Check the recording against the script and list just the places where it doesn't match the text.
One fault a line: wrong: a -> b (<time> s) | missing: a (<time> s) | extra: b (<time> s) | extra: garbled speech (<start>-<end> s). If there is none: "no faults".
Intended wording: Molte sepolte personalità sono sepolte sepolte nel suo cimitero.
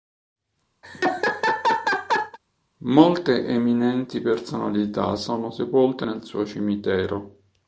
wrong: sepolte -> eminenti (3.5 s)
missing: sepolte (6.1 s)